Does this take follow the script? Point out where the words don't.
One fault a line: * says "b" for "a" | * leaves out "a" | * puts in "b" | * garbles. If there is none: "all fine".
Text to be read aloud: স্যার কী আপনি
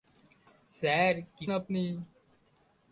all fine